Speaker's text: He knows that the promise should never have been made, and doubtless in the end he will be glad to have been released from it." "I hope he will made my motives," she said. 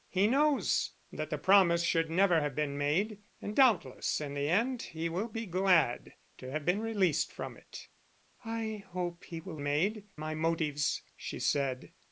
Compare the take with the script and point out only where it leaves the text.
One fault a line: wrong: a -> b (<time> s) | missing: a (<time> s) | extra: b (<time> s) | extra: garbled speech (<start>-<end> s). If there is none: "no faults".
no faults